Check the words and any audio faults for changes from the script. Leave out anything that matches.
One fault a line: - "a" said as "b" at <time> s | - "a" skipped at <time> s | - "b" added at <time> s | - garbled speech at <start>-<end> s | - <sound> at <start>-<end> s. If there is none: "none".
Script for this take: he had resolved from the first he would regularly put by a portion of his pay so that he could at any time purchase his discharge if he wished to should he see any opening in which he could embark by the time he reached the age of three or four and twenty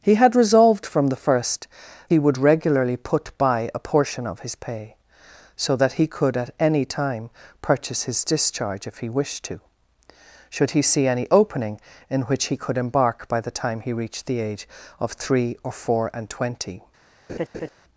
- laugh at 17.3-17.7 s